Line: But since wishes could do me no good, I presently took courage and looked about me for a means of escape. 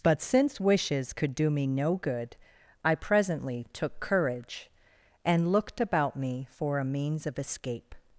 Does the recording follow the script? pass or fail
pass